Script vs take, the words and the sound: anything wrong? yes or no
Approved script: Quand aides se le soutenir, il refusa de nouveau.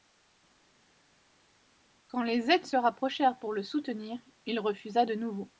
yes